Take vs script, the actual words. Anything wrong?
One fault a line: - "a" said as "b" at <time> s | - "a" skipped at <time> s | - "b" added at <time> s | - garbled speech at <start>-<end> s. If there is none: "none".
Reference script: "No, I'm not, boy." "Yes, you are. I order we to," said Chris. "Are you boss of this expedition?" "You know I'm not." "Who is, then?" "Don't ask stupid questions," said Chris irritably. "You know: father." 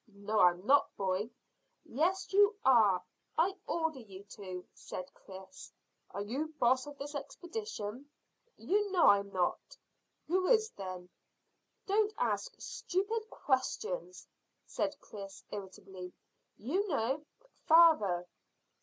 - "we" said as "you" at 4.0 s